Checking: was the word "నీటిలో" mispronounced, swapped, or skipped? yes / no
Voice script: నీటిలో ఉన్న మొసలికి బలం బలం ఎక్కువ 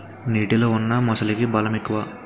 no